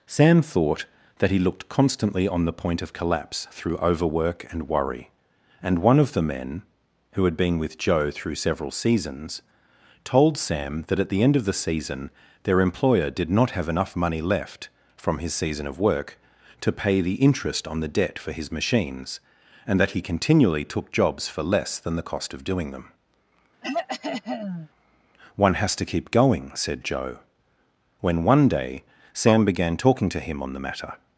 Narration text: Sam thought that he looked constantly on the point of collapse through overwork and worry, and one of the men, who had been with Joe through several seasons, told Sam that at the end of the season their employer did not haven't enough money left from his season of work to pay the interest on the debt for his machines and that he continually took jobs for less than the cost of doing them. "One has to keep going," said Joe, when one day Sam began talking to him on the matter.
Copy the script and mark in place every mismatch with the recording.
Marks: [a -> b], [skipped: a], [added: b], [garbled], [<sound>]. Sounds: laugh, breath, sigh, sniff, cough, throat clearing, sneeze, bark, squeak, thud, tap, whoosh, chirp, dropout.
Sam thought that he looked constantly on the point of collapse through overwork and worry, and one of the men, who had been with Joe through several seasons, told Sam that at the end of the season their employer did not [haven't -> have] enough money left from his season of work to pay the interest on the debt for his machines and that he continually took jobs for less than the cost of doing them. [throat clearing] "One has to keep going," said Joe, when one day Sam began talking to him on the matter.